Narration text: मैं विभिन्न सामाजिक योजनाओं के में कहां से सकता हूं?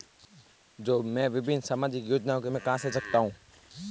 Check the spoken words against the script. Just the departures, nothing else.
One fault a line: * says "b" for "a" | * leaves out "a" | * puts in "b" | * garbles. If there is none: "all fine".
all fine